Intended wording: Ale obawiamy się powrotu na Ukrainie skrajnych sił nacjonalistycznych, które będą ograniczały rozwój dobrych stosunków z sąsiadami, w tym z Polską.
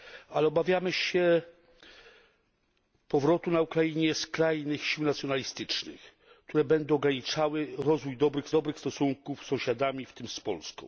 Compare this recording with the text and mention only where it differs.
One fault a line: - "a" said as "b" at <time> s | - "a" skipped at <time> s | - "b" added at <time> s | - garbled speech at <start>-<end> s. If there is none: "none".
- "dobrych" added at 8.5 s